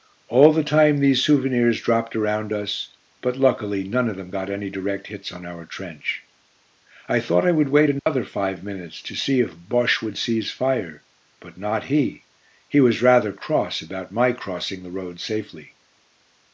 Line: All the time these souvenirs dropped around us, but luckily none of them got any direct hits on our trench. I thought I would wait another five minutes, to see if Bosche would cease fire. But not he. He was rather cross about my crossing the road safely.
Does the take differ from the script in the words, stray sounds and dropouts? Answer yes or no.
yes